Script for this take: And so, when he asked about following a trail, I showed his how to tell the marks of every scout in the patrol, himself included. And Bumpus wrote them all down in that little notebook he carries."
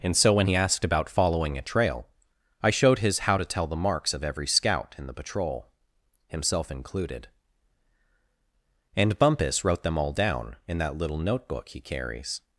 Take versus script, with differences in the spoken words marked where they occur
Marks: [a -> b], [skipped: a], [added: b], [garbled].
And so, when he asked about following a trail, I showed his how to tell the marks of every scout in the patrol, himself included. And Bumpus wrote them all down in that little notebook he carries."